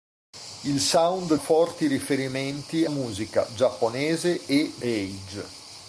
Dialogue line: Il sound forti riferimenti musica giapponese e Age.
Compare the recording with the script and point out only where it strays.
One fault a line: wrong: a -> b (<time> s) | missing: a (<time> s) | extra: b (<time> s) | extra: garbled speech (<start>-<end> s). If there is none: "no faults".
no faults